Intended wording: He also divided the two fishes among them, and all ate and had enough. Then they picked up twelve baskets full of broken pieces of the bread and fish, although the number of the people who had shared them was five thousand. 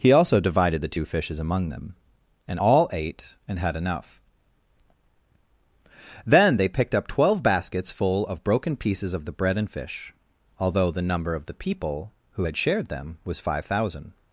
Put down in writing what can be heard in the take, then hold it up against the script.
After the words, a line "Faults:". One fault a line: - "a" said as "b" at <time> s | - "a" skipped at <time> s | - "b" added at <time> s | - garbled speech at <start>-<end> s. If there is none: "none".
He also divided the two fishes among them, and all ate and had enough. Then they picked up twelve baskets full of broken pieces of the bread and fish, although the number of the people who had shared them was five thousand.
Faults:
none